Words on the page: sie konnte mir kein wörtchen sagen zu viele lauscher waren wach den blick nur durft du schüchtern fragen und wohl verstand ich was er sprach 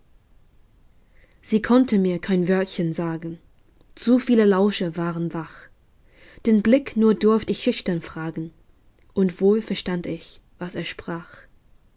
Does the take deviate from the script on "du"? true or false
true